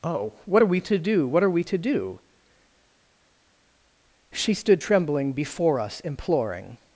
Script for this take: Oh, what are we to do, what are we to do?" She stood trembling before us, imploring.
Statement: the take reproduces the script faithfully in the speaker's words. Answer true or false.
true